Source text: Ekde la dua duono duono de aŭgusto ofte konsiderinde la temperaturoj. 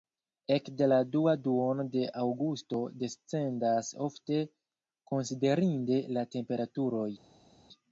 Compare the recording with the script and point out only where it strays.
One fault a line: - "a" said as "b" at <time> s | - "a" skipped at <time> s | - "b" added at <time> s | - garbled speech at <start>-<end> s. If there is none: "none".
- "duono" skipped at 1.9 s
- "descendas" added at 3.0 s